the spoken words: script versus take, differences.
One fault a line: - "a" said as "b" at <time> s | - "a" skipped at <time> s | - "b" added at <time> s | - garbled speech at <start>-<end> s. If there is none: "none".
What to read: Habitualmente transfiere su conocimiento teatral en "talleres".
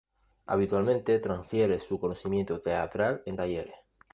none